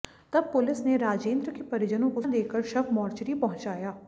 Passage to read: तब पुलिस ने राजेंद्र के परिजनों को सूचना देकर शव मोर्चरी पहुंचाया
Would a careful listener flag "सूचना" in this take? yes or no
yes